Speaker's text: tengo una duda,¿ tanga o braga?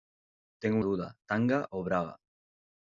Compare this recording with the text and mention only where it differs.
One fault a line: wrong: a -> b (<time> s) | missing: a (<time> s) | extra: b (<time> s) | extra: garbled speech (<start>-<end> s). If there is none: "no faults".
missing: una (0.8 s)